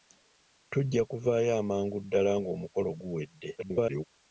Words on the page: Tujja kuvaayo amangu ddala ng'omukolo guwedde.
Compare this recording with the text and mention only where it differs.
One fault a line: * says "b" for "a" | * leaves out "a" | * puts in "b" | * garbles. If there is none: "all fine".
* garbles